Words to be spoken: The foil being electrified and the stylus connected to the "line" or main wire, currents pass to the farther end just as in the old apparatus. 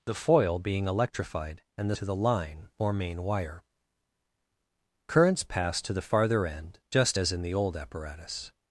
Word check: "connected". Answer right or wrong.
wrong